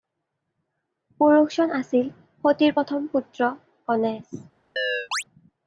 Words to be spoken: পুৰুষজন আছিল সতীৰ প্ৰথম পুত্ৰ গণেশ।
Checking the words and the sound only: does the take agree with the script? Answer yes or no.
no